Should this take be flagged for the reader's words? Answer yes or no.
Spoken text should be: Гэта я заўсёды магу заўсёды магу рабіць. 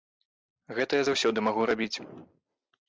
yes